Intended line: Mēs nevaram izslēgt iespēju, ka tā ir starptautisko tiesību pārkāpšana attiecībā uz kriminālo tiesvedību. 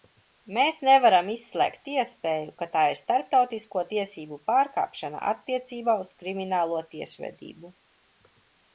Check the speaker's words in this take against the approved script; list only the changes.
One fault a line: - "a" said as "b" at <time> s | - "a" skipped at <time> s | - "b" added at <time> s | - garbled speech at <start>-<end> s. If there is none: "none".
none